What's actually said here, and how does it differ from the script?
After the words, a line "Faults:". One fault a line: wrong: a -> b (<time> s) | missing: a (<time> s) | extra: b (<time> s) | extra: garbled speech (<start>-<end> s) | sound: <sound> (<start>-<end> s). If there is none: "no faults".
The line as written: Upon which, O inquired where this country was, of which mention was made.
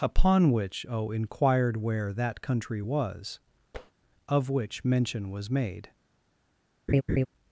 Upon which, O inquired where that country was, of which mention was made.
Faults:
wrong: this -> that (2.1 s)
sound: tap (3.7-3.9 s)
sound: laugh (6.9-7.3 s)